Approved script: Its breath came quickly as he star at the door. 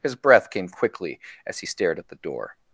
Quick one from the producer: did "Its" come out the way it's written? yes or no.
no